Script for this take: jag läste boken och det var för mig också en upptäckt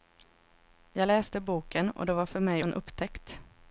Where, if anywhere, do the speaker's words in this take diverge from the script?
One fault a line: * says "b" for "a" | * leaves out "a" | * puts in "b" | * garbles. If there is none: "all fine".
* leaves out "också"